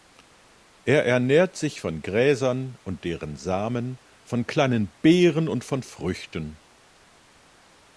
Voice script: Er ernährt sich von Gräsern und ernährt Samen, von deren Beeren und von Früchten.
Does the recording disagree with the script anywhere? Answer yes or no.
yes